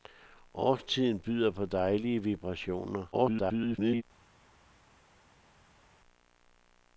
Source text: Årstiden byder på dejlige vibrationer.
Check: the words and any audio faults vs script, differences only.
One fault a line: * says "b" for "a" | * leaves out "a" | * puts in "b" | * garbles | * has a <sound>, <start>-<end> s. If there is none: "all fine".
* garbles